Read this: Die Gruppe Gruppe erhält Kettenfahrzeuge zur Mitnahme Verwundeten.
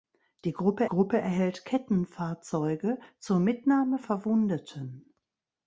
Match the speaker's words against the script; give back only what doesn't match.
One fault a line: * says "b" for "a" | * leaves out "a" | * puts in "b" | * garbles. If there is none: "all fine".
all fine